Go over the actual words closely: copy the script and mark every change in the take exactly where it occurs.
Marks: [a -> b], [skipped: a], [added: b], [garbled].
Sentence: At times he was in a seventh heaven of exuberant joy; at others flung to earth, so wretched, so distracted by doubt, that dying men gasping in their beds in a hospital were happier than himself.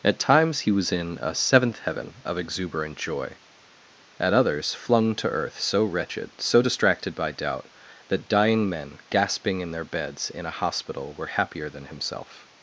At times he was in a seventh heaven of exuberant joy; at others flung to earth, so wretched, so distracted by doubt, that dying men gasping in their beds in a hospital were happier than himself.